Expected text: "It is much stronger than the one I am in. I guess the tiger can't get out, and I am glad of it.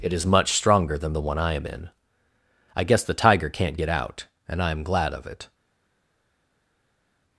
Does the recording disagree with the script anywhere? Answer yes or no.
no